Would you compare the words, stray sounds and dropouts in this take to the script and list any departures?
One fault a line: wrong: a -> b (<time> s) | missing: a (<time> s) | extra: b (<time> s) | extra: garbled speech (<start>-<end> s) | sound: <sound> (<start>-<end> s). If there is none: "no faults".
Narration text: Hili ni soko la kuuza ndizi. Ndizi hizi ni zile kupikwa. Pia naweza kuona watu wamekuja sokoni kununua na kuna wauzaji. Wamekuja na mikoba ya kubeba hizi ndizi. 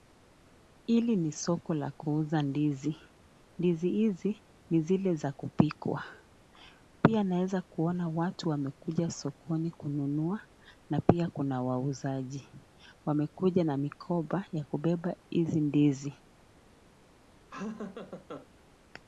extra: za (5.2 s)
extra: pia (11.0 s)
sound: laugh (17.5-18.5 s)